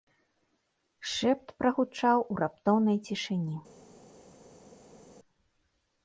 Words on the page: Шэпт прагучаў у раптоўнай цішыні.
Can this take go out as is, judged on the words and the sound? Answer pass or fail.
pass